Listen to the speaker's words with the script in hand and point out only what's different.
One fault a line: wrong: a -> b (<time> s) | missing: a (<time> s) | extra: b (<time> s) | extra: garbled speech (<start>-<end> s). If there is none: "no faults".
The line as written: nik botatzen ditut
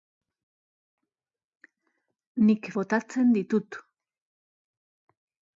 no faults